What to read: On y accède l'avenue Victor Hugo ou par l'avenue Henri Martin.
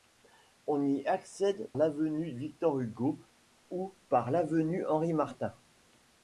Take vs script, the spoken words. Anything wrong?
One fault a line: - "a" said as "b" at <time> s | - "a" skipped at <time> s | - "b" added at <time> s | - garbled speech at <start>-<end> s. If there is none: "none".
none